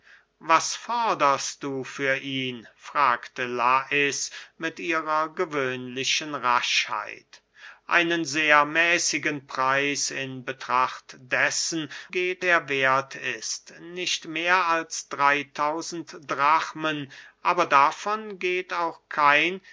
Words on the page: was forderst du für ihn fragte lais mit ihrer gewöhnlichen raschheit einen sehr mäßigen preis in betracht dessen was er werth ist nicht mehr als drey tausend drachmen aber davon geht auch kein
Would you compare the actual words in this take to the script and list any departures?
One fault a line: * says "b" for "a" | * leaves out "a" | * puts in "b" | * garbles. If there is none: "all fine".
* says "geht" for "was"